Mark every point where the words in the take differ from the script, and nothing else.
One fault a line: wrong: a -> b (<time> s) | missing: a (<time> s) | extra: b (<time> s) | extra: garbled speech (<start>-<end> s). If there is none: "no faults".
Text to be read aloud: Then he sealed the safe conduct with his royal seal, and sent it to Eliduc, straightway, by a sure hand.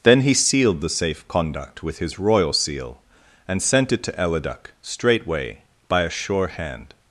no faults